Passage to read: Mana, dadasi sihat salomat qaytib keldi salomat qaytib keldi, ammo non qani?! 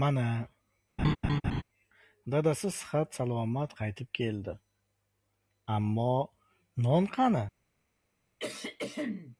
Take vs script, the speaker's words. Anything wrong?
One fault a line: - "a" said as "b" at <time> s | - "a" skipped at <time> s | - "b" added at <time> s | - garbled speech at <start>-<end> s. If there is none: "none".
- "salomat qaytib keldi" skipped at 4.5 s